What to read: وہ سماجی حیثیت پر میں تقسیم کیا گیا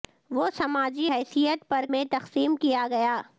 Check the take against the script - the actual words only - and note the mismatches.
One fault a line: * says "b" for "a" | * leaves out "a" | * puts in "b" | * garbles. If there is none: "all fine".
all fine